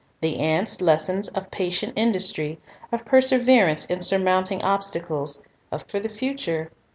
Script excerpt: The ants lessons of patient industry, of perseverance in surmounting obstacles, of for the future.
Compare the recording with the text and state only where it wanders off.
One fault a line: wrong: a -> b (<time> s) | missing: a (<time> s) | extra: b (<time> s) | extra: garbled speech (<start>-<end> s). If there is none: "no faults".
no faults